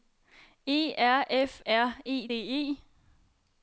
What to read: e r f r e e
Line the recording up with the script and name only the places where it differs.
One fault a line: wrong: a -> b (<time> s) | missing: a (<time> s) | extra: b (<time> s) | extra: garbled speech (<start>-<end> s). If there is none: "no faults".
no faults